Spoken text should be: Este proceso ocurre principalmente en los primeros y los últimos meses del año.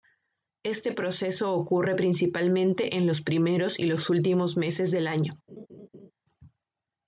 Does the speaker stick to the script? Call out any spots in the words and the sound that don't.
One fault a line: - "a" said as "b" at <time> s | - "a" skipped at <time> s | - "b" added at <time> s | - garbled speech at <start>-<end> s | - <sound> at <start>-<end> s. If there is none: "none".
- laugh at 5.5-6.1 s